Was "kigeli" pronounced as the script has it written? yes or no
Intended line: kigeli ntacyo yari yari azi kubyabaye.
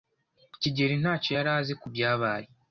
yes